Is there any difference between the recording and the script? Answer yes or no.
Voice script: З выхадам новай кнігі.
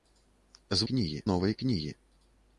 yes